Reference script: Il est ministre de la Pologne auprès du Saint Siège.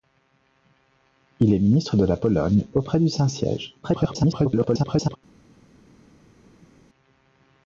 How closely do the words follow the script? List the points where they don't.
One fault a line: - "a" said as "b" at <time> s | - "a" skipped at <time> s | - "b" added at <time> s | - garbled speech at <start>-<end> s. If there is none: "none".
- garbled speech at 3.8-5.2 s